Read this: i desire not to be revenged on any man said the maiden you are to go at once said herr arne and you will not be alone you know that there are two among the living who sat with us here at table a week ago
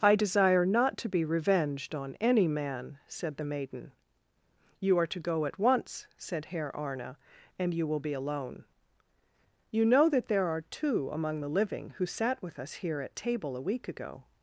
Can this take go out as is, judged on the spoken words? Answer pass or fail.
fail